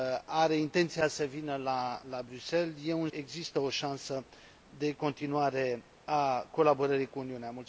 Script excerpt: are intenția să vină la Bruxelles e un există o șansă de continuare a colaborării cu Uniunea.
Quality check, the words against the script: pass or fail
pass